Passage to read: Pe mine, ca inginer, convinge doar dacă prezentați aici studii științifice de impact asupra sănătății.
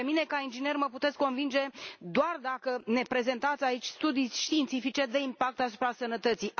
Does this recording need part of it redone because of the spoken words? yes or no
yes